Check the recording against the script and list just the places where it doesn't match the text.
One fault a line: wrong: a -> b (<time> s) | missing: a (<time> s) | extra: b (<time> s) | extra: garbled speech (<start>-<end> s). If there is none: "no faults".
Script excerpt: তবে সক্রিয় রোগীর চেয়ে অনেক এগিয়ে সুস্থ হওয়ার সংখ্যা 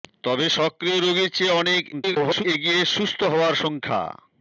extra: garbled speech (1.9-2.4 s)